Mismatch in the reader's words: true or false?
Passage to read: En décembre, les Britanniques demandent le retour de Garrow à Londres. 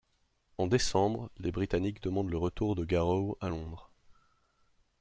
false